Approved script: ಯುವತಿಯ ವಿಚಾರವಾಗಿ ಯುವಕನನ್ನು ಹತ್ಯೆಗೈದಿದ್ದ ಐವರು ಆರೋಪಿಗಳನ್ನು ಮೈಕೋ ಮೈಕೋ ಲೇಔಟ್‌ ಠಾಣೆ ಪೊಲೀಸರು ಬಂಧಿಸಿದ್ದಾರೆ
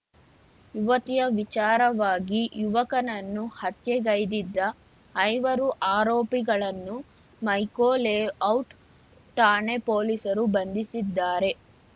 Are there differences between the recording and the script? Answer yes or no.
yes